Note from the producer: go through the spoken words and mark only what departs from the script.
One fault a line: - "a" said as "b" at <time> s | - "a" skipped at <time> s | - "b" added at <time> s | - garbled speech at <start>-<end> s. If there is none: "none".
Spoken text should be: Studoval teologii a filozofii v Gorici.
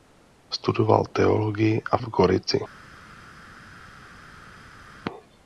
- "filozofii" skipped at 2.0 s